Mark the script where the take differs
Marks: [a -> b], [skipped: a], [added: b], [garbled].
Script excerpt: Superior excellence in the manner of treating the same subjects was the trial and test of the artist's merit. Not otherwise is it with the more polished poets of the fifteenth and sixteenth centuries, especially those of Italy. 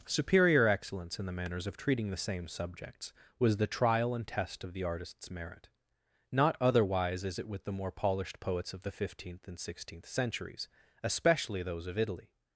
Superior excellence in the [manner -> manners] of treating the same subjects was the trial and test of the artist's merit. Not otherwise is it with the more polished poets of the fifteenth and sixteenth centuries, especially those of Italy.